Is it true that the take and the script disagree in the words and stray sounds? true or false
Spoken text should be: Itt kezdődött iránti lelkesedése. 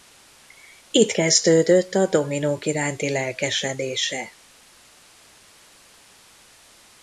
true